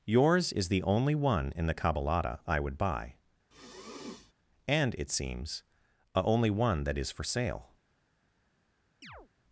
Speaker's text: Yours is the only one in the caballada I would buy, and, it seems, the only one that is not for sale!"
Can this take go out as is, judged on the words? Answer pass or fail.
fail